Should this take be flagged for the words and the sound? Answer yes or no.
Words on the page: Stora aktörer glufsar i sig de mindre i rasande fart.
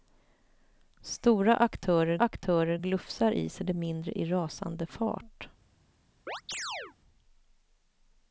yes